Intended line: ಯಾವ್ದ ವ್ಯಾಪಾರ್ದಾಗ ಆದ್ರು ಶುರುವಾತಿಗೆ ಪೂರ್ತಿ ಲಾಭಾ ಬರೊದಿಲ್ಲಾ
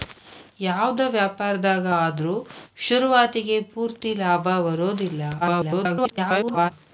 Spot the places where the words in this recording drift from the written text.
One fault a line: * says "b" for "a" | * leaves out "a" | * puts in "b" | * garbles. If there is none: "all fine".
* garbles